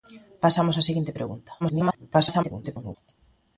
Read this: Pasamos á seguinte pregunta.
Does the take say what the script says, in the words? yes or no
no